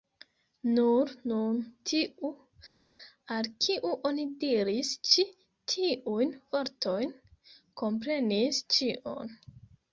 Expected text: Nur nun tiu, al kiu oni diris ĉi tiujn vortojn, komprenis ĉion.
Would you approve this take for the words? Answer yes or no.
yes